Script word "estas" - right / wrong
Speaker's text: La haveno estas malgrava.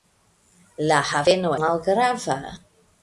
wrong